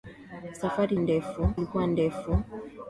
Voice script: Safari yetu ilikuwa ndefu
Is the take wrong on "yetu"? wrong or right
wrong